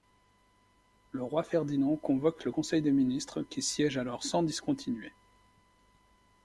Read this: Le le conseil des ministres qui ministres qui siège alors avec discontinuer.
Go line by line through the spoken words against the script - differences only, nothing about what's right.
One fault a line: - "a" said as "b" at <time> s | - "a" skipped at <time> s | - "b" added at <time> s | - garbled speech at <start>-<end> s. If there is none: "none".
- "roi Ferdinand convoque" added at 1.2 s
- "ministres qui" skipped at 3.6 s
- "avec" said as "sans" at 4.2 s